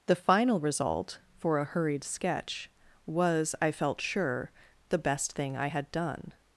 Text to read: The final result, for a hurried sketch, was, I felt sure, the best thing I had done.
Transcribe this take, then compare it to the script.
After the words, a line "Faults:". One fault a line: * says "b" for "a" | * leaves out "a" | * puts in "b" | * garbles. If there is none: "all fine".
The final result, for a hurried sketch, was, I felt sure, the best thing I had done.
Faults:
all fine